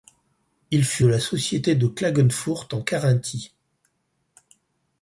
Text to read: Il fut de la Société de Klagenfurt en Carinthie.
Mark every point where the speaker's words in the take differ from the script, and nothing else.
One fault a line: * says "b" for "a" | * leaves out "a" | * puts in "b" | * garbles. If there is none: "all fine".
all fine